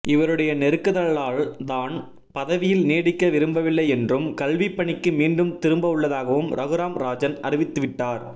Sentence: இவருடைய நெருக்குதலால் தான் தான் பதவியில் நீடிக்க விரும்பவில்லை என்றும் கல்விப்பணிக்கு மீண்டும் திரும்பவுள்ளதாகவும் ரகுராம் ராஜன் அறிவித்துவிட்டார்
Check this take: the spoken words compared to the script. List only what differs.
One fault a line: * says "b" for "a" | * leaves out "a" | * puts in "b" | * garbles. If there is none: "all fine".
* leaves out "தான்"